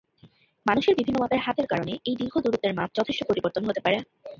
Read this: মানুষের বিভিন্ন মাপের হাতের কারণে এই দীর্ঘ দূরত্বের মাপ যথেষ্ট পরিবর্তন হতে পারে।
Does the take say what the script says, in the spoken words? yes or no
yes